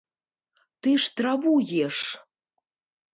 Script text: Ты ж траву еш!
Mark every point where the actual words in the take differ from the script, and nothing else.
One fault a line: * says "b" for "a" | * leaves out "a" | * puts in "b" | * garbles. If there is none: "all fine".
all fine